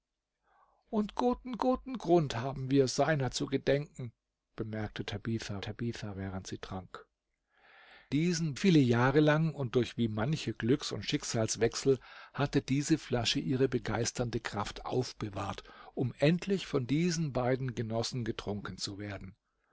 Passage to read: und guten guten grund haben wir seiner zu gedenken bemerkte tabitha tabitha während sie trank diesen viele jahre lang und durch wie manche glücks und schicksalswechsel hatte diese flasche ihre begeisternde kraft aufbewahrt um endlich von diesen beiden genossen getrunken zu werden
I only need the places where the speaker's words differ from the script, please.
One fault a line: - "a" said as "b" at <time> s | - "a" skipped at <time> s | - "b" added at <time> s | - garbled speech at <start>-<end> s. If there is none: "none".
none